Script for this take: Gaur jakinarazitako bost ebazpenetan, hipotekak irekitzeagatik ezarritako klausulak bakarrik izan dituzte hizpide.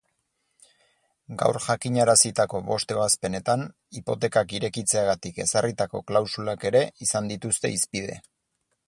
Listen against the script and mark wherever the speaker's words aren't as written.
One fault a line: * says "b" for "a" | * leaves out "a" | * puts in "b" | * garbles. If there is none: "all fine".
* says "ere" for "bakarrik"